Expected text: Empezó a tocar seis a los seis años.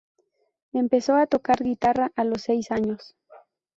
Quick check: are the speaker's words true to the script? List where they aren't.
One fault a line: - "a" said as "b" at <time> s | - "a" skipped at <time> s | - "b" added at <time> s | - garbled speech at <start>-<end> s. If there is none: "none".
- "seis" said as "guitarra" at 1.6 s